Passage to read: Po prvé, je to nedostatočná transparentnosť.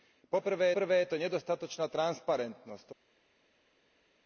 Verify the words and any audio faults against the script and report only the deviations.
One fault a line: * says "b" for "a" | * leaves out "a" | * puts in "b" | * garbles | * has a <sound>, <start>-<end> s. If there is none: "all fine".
* puts in "prvé"